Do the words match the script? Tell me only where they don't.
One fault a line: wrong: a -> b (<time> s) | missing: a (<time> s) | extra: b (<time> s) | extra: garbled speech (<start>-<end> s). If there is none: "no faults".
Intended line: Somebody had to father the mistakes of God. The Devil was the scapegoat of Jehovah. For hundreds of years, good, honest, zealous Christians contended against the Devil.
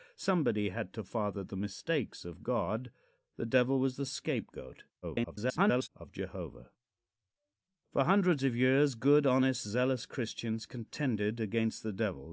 extra: garbled speech (5.0-5.9 s)